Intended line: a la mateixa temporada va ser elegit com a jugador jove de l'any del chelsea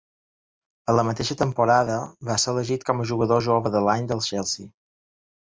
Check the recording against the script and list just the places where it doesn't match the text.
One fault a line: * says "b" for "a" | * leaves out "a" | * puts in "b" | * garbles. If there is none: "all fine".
all fine